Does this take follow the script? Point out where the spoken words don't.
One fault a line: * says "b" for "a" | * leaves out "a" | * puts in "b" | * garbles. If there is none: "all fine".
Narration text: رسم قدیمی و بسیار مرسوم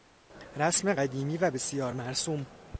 all fine